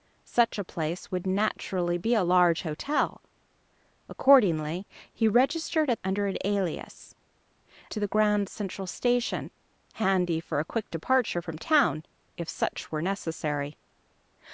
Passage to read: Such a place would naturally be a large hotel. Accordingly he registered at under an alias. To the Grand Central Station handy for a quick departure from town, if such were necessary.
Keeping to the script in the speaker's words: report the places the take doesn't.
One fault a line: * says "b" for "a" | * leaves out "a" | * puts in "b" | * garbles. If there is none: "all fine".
all fine